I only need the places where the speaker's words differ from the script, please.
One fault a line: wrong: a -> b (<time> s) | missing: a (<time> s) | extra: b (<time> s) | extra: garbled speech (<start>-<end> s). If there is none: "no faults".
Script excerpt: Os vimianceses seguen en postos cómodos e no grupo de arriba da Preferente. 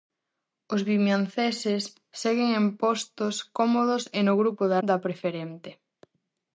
missing: arriba (4.8 s)